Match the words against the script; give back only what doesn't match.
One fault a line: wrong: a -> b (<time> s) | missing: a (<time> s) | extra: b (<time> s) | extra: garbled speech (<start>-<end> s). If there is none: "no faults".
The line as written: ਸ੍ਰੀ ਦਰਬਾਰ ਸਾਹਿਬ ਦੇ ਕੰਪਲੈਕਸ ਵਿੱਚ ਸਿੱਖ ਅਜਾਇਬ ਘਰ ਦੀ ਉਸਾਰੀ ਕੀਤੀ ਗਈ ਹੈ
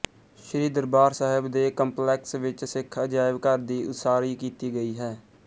no faults